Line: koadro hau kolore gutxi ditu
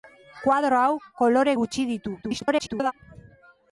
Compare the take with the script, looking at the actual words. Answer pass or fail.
fail